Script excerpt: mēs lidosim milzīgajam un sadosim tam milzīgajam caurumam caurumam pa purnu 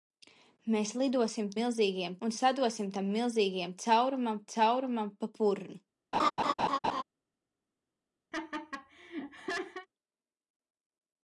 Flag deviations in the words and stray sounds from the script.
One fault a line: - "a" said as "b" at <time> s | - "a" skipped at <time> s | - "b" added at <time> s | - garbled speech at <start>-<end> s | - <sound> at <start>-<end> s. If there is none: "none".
- laugh at 6.1-7.0 s
- laugh at 8.3-9.9 s